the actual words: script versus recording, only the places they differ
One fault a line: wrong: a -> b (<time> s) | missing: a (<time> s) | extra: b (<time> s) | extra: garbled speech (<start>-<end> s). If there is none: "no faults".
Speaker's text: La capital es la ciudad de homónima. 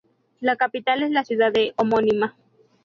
no faults